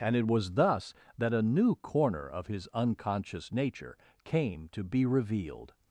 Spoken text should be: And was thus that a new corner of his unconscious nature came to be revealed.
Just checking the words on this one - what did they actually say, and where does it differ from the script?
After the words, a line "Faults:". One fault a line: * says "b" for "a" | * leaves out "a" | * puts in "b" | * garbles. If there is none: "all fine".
And it was thus that a new corner of his unconscious nature came to be revealed.
Faults:
* puts in "it"